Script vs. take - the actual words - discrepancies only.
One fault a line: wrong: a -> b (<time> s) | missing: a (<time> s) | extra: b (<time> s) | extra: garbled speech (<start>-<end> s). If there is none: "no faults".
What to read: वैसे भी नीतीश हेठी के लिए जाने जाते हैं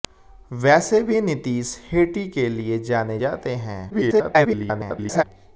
extra: garbled speech (3.9-5.2 s)